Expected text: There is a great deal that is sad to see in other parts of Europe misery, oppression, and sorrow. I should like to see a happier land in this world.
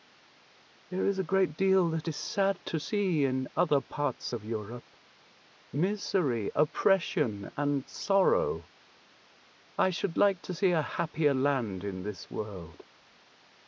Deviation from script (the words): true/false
false